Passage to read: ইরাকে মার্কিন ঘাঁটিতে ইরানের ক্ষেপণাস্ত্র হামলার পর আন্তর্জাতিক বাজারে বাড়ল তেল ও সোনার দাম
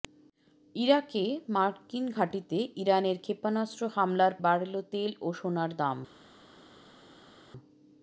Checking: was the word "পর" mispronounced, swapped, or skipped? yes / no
yes